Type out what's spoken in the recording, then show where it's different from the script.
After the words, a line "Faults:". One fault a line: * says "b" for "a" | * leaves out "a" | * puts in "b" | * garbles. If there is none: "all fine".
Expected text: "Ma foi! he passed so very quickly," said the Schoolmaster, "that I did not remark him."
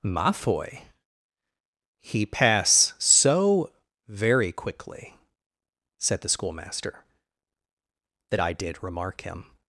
"Ma foi! he pass so very quickly," said the Schoolmaster, "that I did remark him."
Faults:
* says "pass" for "passed"
* leaves out "not"